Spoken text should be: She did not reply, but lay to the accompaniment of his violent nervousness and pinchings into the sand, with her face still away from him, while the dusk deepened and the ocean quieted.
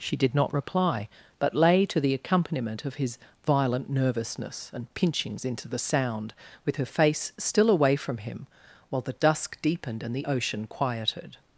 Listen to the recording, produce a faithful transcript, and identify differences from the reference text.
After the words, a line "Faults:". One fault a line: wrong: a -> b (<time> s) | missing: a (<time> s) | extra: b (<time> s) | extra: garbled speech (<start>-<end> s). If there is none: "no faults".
She did not reply, but lay to the accompaniment of his violent nervousness and pinchings into the sound, with her face still away from him, while the dusk deepened and the ocean quieted.
Faults:
wrong: sand -> sound (5.8 s)